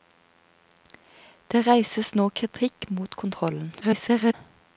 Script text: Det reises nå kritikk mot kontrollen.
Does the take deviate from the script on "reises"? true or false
false